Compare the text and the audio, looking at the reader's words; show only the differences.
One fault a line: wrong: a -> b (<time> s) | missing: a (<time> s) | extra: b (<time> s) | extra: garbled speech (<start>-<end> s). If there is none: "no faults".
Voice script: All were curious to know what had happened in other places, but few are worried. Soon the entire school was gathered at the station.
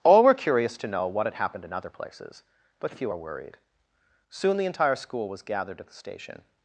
no faults